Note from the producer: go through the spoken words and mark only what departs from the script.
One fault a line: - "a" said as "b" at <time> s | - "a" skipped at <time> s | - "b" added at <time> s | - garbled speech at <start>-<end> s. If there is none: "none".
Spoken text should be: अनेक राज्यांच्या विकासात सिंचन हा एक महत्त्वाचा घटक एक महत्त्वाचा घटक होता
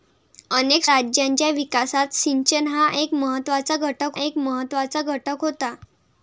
none